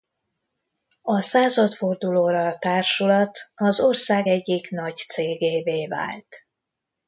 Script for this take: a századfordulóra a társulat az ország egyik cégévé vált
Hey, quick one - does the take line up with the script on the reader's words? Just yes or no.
no